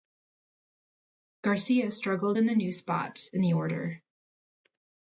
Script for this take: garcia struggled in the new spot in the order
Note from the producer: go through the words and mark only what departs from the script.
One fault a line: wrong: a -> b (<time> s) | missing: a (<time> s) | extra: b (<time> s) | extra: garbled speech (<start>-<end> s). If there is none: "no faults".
no faults